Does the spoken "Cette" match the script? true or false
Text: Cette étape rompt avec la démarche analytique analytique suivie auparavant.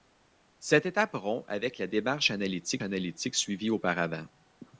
true